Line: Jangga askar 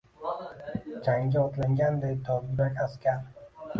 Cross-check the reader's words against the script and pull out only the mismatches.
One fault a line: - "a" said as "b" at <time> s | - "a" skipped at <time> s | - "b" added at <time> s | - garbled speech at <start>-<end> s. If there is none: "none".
- "otlanganday dovyurak" added at 1.5 s